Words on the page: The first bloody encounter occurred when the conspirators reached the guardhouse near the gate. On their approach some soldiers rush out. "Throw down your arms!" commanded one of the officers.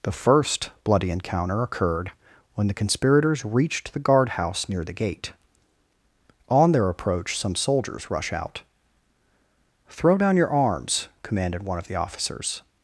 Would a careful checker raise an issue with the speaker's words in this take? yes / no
no